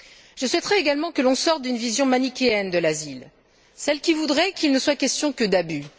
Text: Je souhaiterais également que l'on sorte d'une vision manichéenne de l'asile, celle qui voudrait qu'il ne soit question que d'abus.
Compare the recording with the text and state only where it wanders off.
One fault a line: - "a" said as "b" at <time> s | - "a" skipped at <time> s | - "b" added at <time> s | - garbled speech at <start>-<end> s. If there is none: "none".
none